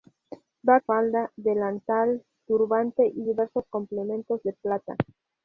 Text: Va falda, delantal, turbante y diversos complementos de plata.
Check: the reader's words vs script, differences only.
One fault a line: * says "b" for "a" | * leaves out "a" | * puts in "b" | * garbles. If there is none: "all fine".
all fine